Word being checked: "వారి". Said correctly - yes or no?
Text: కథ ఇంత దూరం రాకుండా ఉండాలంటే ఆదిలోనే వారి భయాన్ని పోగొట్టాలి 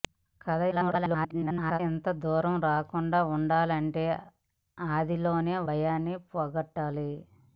no